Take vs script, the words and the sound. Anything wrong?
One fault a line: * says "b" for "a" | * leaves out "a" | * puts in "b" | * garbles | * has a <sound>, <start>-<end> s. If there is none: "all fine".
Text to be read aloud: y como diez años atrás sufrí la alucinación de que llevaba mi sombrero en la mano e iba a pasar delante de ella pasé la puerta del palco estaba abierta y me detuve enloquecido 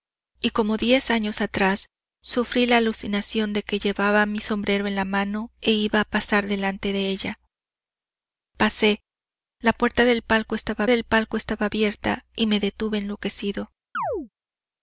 * puts in "del palco estaba"
* has a chirp, 13.9-14.3 s